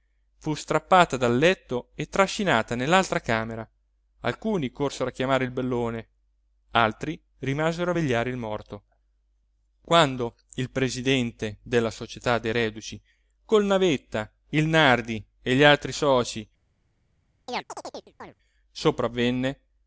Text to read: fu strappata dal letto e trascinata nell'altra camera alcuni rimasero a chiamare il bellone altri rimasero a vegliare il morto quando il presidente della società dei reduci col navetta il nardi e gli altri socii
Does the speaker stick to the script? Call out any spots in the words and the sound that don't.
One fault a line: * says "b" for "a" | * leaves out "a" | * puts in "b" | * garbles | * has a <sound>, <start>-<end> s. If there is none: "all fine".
* says "corsero" for "rimasero"
* has a chirp, 17.5-18.3 s